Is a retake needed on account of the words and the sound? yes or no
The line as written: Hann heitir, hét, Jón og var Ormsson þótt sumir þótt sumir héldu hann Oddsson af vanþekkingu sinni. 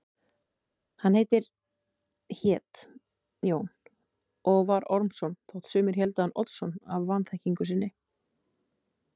yes